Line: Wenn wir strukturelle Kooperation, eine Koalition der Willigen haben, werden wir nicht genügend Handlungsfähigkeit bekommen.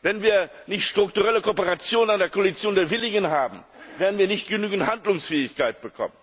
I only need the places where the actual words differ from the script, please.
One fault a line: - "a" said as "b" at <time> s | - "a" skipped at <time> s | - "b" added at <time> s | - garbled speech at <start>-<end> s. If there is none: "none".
- "nicht" added at 0.7 s